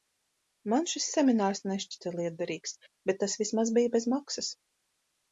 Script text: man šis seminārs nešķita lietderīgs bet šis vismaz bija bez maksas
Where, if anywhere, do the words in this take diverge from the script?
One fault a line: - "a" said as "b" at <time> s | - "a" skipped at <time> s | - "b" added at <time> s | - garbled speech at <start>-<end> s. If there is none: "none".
- "šis" said as "tas" at 3.2 s